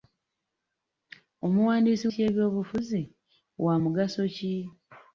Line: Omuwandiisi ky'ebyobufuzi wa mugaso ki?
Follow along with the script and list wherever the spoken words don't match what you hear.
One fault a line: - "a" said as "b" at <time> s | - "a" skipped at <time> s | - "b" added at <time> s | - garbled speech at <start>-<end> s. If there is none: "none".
none